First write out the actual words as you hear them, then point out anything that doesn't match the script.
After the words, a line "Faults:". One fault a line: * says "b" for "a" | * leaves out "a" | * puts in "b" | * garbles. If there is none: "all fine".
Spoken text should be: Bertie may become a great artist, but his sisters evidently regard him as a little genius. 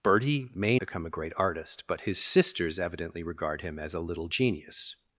Bertie may become a great artist, but his sisters evidently regard him as a little genius.
Faults:
all fine